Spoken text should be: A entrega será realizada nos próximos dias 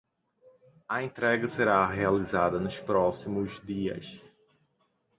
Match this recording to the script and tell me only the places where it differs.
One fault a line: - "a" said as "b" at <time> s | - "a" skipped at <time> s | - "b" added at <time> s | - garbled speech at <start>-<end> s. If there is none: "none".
none